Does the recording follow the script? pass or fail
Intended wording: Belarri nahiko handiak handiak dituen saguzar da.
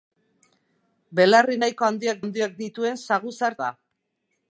pass